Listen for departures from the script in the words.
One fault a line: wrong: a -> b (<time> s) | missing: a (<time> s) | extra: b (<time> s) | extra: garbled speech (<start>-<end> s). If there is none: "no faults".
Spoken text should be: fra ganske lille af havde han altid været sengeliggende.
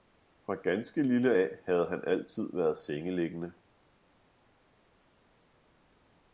no faults